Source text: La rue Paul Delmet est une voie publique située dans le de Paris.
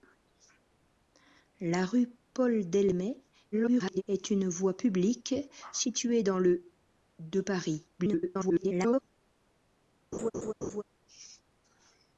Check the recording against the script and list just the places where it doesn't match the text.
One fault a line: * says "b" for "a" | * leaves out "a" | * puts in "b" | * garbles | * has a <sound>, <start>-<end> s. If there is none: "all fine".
* garbles
* garbles
* has a laugh, 10.1-10.8 s